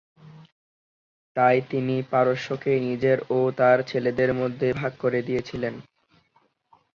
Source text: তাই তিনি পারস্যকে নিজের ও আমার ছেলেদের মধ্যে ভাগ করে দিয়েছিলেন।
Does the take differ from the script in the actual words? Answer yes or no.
yes